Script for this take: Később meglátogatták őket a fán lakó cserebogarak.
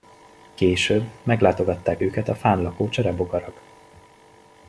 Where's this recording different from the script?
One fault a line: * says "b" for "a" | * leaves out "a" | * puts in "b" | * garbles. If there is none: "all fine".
all fine